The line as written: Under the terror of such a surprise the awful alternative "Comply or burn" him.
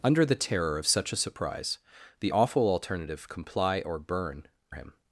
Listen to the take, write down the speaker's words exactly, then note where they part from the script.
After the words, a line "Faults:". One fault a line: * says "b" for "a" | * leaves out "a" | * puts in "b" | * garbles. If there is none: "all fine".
Under the terror of such a surprise the awful alternative "Comply or burn" him.
Faults:
all fine